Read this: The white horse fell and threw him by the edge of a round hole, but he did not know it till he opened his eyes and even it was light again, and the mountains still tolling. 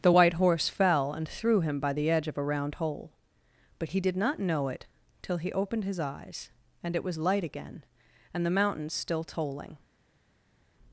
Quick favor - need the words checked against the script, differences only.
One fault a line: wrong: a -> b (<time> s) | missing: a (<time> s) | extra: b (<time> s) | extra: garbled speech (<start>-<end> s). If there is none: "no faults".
missing: even (6.9 s)